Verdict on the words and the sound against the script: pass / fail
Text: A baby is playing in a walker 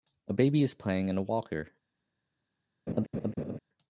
fail